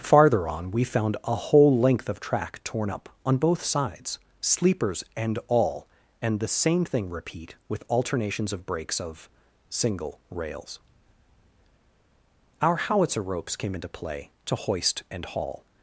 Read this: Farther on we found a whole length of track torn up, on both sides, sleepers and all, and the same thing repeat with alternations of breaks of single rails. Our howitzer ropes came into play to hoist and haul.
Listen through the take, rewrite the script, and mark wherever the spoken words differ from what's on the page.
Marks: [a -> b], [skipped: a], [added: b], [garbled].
Farther on we found a whole length of track torn up, on both sides, sleepers and all, and the same thing repeat with alternations of breaks of single rails. Our howitzer ropes came into play to hoist and haul.